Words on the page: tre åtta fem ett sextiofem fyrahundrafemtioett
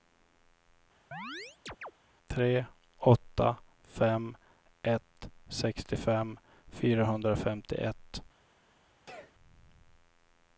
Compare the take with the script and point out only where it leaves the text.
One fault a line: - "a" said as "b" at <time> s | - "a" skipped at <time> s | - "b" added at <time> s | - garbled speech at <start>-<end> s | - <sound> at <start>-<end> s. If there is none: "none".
- chirp at 1.1-1.9 s
- sneeze at 9.1-9.3 s